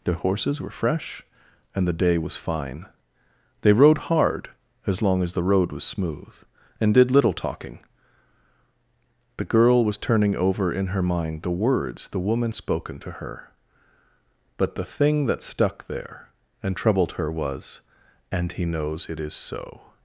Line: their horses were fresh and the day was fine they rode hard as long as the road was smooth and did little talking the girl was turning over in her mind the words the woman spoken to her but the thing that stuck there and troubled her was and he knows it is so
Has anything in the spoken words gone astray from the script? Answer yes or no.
no